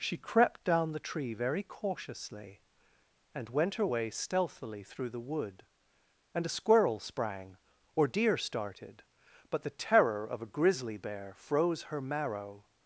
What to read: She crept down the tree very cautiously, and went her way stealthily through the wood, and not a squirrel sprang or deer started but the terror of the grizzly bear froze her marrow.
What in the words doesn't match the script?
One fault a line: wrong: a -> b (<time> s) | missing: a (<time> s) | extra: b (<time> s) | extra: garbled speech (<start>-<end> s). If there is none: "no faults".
missing: not (6.5 s)
wrong: the -> a (10.4 s)